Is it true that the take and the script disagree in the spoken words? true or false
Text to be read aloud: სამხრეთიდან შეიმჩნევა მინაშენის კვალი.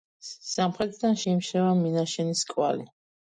false